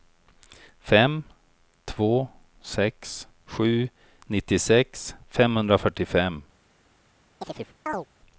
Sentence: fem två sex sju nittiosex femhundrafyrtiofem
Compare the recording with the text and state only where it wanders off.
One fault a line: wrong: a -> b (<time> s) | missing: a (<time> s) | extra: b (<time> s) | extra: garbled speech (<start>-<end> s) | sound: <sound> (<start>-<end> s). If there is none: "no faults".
sound: chirp (7.4-8.1 s)